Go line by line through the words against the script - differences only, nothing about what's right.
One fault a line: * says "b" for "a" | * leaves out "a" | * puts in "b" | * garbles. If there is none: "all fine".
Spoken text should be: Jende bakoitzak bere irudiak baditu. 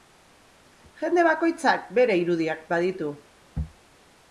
all fine